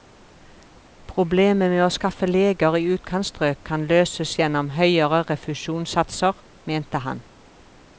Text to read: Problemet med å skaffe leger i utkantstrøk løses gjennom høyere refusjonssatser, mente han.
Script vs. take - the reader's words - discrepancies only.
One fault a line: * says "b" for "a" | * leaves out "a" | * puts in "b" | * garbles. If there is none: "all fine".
* puts in "kan"